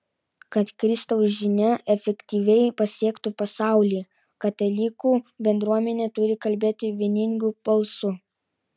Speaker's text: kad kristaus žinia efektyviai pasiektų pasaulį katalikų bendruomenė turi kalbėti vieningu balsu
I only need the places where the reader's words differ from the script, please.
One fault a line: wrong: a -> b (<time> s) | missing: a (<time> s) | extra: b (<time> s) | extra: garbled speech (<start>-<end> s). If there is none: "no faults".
no faults